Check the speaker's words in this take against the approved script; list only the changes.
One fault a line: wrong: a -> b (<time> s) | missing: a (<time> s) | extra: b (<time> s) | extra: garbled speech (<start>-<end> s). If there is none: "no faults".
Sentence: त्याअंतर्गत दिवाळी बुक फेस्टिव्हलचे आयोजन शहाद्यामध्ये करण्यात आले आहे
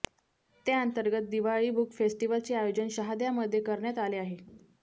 no faults